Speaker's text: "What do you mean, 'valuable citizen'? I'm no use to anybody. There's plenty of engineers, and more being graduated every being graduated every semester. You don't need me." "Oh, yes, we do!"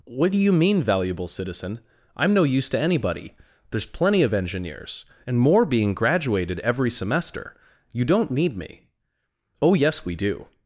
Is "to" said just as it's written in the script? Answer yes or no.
yes